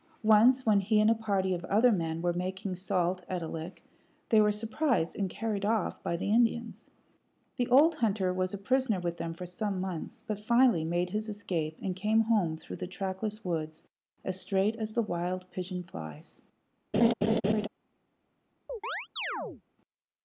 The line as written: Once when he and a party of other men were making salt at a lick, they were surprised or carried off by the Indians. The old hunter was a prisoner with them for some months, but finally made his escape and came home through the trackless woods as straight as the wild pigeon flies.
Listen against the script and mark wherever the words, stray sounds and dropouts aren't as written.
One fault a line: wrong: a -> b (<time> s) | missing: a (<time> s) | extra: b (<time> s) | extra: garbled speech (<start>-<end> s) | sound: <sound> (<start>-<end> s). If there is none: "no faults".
wrong: or -> and (5.2 s)
sound: laugh (16.9-17.7 s)
sound: chirp (18.7-19.6 s)